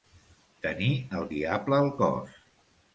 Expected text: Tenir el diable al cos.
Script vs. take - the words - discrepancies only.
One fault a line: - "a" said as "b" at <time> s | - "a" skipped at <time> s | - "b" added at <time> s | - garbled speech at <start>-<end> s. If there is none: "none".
none